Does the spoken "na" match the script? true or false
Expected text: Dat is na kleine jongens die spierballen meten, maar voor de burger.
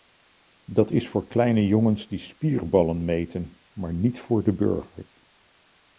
false